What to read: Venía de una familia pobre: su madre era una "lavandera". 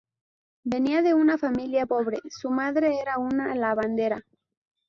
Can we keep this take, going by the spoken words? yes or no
yes